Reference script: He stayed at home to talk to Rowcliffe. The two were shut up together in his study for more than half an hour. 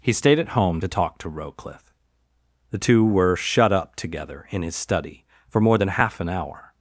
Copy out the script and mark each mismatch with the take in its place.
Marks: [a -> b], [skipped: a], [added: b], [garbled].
He stayed at home to talk to Rowcliffe. The two were shut up together in his study for more than half an hour.